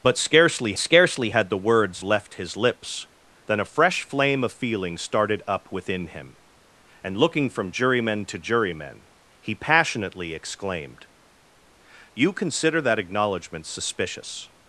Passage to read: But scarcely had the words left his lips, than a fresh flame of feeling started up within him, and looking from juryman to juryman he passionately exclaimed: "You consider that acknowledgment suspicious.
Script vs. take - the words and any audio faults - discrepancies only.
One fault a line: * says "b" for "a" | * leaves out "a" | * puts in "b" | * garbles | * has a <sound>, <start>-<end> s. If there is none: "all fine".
* puts in "scarcely"